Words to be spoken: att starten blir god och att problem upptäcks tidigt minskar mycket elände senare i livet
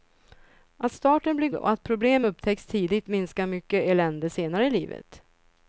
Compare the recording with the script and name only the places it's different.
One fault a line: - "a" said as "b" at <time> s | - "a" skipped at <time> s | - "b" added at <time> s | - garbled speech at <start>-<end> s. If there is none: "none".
- "god" skipped at 1.5 s